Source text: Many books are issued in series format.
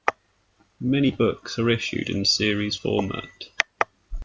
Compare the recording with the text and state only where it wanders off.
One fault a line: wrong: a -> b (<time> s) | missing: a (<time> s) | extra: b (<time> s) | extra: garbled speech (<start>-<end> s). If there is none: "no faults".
no faults